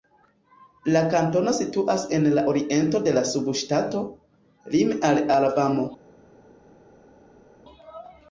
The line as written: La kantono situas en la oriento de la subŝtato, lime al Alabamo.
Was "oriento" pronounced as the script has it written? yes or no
yes